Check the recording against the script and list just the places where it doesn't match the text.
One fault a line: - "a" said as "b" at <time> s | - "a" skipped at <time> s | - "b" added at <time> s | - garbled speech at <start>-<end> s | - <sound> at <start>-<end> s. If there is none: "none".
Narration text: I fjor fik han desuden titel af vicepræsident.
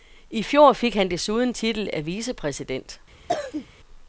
- cough at 3.3-3.7 s